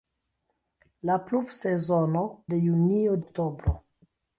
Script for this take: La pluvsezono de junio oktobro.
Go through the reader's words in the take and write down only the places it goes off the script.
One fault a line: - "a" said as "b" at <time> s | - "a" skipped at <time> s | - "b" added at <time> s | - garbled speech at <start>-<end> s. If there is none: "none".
none